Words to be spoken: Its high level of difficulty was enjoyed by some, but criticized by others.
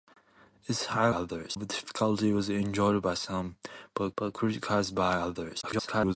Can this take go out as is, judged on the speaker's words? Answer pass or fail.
fail